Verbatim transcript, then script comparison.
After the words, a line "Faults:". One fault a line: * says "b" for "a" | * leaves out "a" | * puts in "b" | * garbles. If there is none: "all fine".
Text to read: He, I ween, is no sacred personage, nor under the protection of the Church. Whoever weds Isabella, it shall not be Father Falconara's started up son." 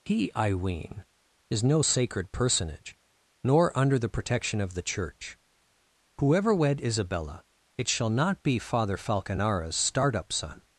He, I ween, is no sacred personage, nor under the protection of the Church. Whoever wed Isabella, it shall not be Father Falconara's start up son."
Faults:
* says "wed" for "weds"
* says "start" for "started"